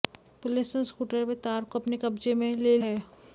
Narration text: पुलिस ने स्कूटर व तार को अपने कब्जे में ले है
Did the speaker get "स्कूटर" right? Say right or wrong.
right